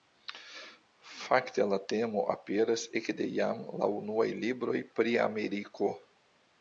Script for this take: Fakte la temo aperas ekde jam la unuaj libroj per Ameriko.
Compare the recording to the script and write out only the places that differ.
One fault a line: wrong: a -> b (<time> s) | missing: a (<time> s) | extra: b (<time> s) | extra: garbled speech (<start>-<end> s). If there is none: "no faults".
wrong: per -> pri (5.0 s)